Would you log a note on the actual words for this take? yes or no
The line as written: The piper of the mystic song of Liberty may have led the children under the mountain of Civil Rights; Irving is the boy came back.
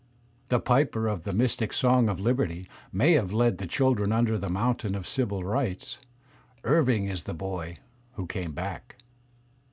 yes